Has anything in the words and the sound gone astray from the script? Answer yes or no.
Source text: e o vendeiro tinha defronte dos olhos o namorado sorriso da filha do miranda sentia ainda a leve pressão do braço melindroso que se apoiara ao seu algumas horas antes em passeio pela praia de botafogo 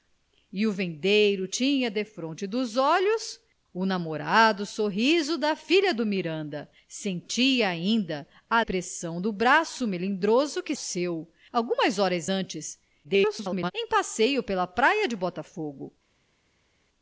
yes